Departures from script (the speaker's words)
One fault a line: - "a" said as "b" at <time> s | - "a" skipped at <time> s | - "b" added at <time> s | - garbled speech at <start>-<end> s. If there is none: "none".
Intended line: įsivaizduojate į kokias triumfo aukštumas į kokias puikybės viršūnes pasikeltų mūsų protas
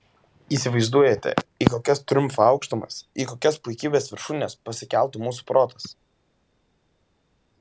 none